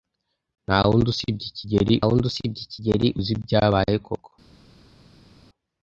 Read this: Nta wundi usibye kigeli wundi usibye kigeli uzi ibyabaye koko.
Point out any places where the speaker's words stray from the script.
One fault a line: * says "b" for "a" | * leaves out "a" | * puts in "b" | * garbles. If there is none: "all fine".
all fine